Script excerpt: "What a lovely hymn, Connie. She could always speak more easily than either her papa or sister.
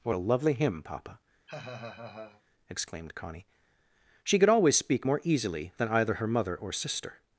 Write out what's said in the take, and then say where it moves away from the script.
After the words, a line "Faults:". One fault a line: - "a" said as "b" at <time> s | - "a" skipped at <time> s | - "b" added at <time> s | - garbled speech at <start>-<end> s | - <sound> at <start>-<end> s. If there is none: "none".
"What a lovely hymn, papa!" exclaimed Connie. She could always speak more easily than either her mother or sister.
Faults:
- "papa exclaimed" added at 0.8 s
- laugh at 1.5-2.4 s
- "papa" said as "mother" at 6.3 s